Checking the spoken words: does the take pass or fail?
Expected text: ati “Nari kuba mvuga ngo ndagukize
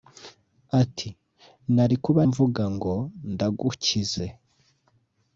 pass